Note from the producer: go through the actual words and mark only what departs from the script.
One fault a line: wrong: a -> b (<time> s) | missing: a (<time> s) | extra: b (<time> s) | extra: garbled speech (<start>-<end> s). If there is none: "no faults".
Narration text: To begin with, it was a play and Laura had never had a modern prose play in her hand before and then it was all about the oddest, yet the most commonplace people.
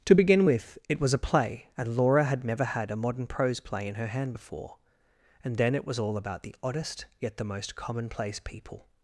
no faults